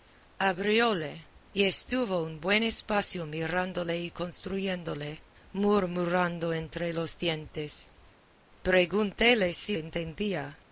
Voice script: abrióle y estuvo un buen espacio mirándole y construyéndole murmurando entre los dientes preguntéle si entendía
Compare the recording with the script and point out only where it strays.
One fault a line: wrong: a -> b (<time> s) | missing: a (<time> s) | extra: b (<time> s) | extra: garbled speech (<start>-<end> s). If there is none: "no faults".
no faults